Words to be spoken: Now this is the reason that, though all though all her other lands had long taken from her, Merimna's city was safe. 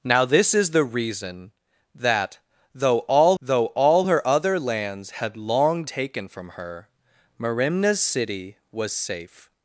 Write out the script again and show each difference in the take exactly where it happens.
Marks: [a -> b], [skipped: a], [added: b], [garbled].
Now this is the reason that, though all though all her other lands had long taken from her, Merimna's city was safe.